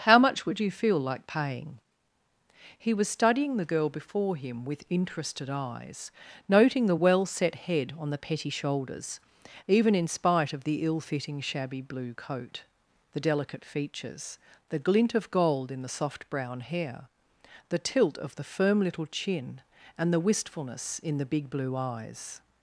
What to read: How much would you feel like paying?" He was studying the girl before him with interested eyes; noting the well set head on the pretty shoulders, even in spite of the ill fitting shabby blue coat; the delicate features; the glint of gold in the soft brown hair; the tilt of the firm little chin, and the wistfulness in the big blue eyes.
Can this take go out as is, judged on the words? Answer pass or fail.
fail